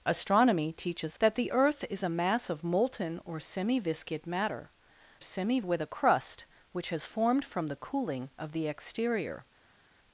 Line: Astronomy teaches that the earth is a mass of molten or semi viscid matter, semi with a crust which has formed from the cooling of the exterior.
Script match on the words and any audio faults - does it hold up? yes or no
yes